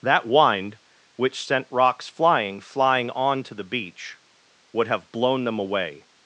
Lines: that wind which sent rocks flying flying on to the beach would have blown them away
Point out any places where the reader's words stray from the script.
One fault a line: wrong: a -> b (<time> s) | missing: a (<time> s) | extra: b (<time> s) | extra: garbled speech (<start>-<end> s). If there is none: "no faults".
no faults